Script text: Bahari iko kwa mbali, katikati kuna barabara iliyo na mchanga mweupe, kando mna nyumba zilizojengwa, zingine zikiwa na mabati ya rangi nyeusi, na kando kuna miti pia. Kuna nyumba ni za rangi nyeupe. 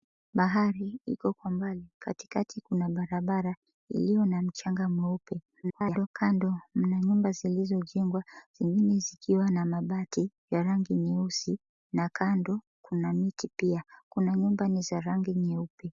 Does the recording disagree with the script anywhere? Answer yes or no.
yes